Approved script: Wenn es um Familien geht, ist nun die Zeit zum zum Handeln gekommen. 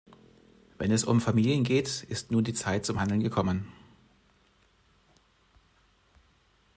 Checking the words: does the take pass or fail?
fail